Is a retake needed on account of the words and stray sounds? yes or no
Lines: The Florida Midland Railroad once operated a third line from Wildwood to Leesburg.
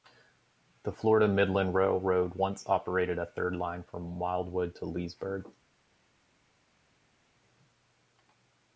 no